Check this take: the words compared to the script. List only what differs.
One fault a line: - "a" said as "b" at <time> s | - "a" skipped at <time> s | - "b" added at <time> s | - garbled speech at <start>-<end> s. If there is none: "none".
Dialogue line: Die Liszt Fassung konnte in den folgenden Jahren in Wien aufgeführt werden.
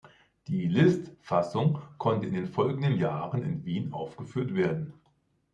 none